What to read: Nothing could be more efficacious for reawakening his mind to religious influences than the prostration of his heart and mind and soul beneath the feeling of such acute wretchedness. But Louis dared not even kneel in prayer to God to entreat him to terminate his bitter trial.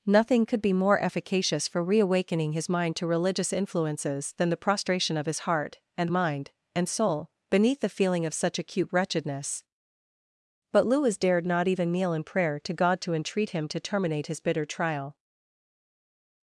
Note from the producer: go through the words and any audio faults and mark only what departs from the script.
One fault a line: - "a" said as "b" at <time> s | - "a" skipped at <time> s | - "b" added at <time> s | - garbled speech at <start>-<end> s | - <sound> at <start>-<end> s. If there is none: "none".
none